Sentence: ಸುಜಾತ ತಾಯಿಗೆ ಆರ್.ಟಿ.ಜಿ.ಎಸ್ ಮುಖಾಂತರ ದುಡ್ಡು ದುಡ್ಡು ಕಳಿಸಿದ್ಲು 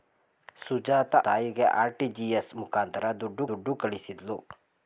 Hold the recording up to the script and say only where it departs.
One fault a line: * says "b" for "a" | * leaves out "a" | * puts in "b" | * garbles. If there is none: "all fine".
all fine